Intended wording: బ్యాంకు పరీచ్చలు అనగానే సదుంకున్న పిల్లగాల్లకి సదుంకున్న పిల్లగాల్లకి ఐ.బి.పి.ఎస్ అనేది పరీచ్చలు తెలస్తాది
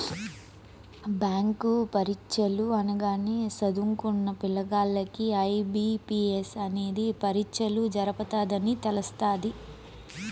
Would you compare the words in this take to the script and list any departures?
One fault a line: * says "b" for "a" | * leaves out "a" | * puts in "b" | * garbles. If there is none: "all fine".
* leaves out "సదుంకున్న పిల్లగాల్లకి"
* puts in "జరపతదని"